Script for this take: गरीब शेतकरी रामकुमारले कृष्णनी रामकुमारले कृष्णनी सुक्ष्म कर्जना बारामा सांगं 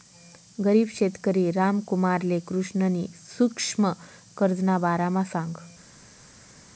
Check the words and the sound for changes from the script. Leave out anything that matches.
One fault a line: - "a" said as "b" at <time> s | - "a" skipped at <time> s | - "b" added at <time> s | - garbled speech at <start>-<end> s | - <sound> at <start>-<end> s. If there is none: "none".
- "रामकुमारले कृष्णनी" skipped at 3.0 s